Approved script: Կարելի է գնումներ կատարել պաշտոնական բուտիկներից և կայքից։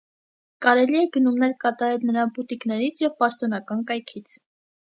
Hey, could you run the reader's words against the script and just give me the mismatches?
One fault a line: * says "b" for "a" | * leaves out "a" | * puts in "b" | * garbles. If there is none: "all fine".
* says "նրա" for "պաշտոնական"
* puts in "պաշտոնական"